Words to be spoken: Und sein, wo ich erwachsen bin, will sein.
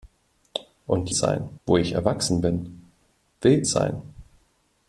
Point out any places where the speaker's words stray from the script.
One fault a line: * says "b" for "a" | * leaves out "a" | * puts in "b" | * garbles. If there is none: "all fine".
all fine